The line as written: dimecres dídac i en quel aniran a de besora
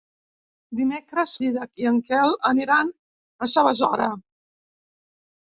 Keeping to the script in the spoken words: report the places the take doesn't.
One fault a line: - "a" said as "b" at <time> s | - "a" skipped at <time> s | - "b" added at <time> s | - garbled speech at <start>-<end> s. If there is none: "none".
none